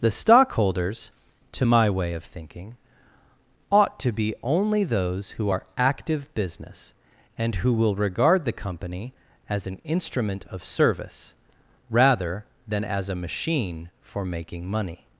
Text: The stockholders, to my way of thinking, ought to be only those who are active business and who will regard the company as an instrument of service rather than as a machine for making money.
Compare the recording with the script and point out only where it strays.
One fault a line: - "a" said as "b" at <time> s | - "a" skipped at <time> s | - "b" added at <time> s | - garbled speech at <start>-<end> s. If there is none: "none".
none